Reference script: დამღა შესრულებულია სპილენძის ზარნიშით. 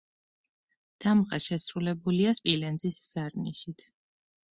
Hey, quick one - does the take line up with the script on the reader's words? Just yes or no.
yes